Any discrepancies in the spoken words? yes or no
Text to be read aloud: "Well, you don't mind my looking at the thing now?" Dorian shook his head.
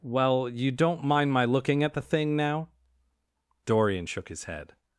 no